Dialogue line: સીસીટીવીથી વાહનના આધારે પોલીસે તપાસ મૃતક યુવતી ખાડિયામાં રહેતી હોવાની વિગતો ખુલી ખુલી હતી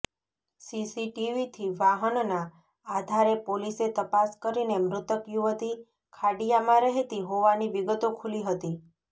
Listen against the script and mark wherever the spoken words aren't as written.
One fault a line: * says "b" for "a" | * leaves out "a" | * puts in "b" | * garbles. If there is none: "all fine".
* puts in "કરીને"
* leaves out "ખુલી"